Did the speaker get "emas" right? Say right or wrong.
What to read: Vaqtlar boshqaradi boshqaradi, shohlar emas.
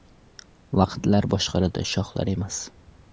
right